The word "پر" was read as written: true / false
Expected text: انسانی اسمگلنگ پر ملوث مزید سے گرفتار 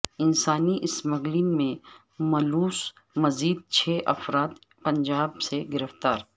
false